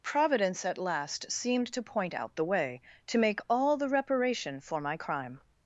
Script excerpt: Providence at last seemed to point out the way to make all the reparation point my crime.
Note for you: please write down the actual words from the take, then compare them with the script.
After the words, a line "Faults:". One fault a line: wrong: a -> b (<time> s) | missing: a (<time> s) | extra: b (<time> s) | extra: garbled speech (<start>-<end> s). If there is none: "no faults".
Providence at last seemed to point out the way to make all the reparation for my crime.
Faults:
wrong: point -> for (4.6 s)